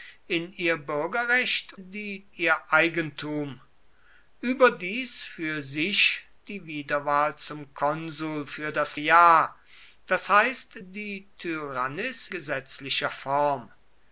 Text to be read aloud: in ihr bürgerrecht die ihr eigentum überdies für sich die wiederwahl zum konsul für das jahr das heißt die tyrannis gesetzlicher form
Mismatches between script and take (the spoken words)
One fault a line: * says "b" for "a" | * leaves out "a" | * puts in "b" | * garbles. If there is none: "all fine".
all fine